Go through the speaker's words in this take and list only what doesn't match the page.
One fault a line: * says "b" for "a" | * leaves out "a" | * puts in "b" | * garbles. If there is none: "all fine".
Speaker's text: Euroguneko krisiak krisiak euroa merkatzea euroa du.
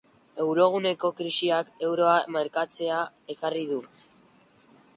* leaves out "krisiak"
* says "ekarri" for "euroa"